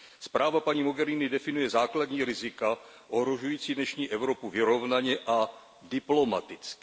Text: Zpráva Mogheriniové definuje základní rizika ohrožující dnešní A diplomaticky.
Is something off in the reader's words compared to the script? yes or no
yes